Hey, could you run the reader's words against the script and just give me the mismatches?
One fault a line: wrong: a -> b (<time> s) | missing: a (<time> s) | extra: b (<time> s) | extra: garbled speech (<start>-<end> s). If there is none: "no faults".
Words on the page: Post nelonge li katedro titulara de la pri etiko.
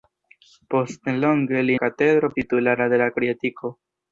no faults